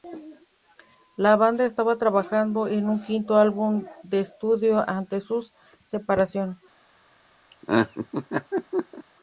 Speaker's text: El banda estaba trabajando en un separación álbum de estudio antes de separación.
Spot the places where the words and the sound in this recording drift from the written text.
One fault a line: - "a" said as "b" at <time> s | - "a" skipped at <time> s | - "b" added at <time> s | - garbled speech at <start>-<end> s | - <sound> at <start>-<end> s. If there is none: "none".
- "El" said as "La" at 1.1 s
- "separación" said as "quinto" at 3.0 s
- "su" added at 5.2 s
- laugh at 7.5-9.0 s